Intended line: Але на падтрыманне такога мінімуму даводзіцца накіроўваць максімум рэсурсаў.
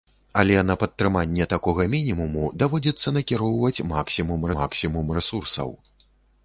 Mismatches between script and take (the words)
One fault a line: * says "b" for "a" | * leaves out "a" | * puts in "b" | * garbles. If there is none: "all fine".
* puts in "максімум"